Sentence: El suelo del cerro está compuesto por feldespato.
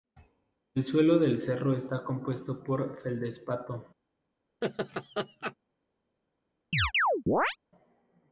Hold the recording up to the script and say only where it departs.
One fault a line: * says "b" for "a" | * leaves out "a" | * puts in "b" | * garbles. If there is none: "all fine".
all fine